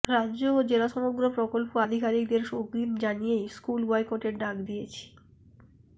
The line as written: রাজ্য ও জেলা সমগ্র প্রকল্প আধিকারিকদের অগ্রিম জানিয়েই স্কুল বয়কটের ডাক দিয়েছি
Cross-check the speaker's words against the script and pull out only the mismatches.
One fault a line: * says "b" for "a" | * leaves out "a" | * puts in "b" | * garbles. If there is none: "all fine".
all fine